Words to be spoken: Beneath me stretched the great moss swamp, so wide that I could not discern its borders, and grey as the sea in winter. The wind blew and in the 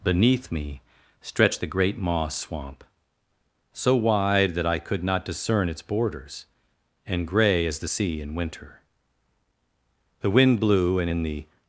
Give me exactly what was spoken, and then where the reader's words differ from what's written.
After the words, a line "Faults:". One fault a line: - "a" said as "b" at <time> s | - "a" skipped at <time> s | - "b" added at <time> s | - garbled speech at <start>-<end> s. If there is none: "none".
Beneath me stretched the great moss swamp, so wide that I could not discern its borders, and grey as the sea in winter. The wind blew and in the
Faults:
none